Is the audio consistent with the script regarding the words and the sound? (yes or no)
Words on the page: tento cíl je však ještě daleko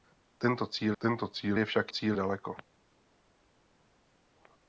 no